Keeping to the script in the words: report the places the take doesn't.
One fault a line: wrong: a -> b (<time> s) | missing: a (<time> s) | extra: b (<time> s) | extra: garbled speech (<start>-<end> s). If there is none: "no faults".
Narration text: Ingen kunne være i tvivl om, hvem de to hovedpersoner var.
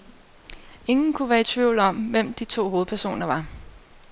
no faults